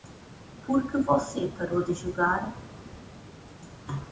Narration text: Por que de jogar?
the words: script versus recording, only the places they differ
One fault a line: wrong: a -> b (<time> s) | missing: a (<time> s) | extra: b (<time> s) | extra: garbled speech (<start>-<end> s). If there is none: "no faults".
extra: você parou (1.0 s)